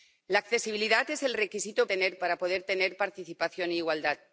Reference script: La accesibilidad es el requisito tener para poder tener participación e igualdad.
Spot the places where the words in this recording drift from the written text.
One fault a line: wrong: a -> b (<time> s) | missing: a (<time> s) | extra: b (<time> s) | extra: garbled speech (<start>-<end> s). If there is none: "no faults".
no faults